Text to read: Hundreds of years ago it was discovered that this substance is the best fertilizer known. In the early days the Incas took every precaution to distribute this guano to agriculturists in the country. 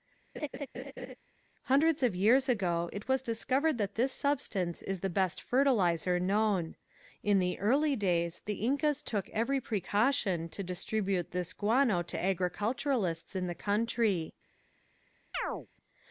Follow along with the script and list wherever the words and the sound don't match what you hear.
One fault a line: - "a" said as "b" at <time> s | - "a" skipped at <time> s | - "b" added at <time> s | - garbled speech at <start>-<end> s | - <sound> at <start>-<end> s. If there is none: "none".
- laugh at 0.4-1.2 s
- chirp at 15.3-15.7 s